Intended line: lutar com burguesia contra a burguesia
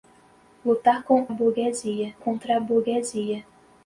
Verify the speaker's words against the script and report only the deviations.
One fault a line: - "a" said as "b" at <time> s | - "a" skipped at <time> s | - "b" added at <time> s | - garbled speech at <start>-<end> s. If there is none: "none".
none